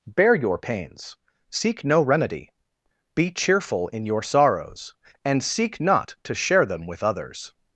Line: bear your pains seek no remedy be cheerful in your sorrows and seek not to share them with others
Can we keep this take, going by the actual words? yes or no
yes